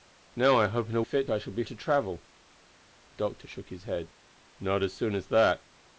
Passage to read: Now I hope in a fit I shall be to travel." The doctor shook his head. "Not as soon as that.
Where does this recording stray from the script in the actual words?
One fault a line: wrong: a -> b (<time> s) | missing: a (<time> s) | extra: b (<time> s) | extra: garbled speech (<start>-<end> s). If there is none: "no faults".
no faults